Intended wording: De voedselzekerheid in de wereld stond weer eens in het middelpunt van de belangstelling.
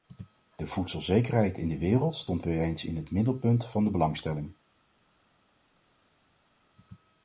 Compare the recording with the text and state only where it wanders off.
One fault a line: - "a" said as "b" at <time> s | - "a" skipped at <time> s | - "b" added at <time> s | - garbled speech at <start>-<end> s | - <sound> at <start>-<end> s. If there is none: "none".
none